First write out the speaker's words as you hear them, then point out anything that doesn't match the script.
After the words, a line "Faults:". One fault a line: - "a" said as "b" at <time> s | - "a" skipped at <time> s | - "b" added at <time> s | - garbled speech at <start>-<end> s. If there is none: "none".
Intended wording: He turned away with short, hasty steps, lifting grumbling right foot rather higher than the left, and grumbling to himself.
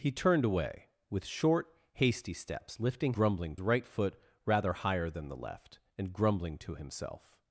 He turned away with short, hasty steps, lifting grumbling right foot rather higher than the left, and grumbling to himself.
Faults:
none